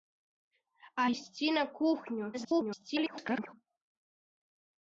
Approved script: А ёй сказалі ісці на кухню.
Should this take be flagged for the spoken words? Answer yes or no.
yes